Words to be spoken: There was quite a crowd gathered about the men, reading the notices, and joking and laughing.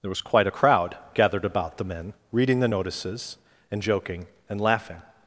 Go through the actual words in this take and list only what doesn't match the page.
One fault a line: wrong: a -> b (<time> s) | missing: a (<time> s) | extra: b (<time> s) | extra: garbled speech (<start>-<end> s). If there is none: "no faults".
no faults